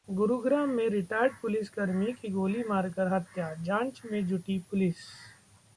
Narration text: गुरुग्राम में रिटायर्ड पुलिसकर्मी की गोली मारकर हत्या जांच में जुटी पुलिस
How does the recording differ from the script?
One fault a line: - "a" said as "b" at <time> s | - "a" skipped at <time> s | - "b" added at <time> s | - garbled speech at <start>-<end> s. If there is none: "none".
none